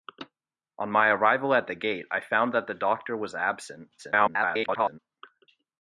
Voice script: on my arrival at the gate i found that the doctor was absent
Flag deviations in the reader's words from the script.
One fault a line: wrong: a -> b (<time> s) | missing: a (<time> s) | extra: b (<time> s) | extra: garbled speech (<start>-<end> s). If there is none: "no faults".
extra: garbled speech (4.0-5.0 s)